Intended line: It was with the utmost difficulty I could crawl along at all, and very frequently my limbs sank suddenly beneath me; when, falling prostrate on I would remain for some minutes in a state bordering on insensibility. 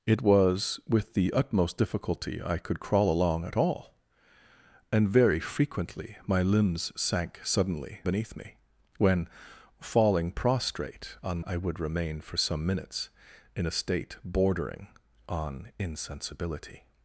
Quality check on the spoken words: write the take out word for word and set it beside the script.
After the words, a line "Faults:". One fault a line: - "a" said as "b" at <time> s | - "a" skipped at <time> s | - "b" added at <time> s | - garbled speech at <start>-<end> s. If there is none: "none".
It was with the utmost difficulty I could crawl along at all, and very frequently my limbs sank suddenly beneath me; when, falling prostrate on I would remain for some minutes in a state bordering on insensibility.
Faults:
none